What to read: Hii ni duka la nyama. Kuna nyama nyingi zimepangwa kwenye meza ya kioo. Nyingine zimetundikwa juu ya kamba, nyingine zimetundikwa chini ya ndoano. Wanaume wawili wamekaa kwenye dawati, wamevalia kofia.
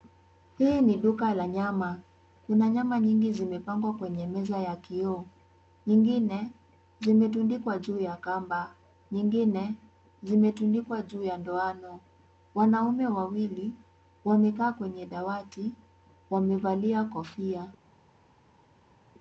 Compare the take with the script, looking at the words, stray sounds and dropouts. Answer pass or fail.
fail